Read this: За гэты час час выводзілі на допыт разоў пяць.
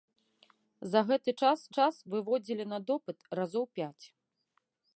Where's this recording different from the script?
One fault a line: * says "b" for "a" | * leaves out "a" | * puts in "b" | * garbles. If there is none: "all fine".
all fine